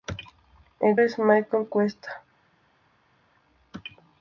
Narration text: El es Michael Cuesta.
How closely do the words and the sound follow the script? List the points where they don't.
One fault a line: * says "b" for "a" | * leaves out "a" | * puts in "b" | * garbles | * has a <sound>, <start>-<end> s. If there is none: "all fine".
all fine